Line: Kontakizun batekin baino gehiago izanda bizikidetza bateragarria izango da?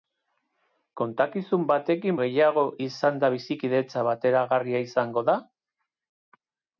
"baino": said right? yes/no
no